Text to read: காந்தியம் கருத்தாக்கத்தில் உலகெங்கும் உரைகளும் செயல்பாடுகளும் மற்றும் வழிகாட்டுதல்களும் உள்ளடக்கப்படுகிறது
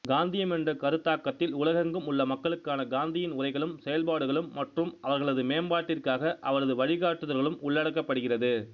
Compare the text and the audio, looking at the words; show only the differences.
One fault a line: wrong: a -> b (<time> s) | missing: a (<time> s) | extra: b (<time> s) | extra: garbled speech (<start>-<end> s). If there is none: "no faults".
extra: என்ற (0.5 s)
extra: உள்ள மக்களுக்கான காந்தியின் (2.1 s)
extra: அவர்களது மேம்பாட்டிற்காக அவரது (5.0 s)